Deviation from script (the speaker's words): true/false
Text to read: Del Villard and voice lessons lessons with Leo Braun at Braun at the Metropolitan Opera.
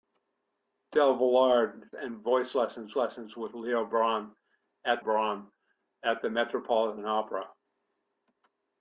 false